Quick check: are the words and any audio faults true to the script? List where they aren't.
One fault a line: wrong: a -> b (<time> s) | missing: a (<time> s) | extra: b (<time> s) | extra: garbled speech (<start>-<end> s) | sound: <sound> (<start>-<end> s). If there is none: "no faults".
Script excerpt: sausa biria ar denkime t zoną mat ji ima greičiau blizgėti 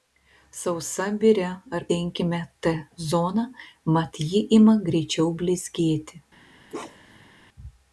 sound: bark (6.7-7.3 s)